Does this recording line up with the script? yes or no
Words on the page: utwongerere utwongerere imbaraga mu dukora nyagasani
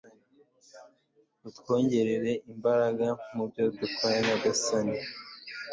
no